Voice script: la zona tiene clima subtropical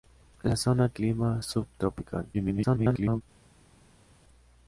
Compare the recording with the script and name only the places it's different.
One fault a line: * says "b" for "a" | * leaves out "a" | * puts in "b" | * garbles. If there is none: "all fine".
* leaves out "tiene"
* garbles